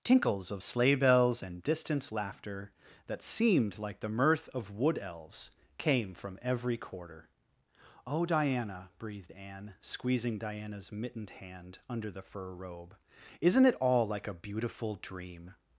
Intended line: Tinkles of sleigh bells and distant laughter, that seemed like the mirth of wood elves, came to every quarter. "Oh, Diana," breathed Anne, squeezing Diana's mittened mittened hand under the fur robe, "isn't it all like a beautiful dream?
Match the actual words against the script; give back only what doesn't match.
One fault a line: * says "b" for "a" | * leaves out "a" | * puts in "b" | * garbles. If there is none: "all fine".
* says "from" for "to"
* leaves out "mittened"